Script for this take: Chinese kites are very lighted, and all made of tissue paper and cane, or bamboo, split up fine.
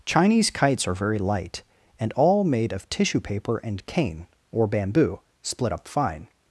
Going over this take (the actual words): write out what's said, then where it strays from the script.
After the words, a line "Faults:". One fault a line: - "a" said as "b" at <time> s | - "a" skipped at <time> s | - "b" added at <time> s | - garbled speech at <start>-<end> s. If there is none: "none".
Chinese kites are very light, and all made of tissue paper and cane, or bamboo, split up fine.
Faults:
- "lighted" said as "light" at 1.2 s